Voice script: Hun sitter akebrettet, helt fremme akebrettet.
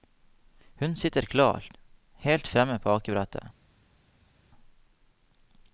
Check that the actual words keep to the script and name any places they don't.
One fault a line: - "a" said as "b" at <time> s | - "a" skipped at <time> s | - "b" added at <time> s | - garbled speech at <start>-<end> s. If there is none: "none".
- "akebrettet" said as "klar" at 1.2 s
- "på" added at 2.8 s